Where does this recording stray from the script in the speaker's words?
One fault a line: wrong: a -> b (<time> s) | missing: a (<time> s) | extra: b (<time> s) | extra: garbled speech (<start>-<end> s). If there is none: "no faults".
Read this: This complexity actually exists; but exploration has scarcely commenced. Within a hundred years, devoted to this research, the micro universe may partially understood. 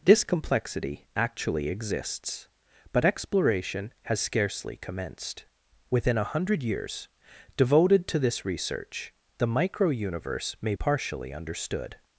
no faults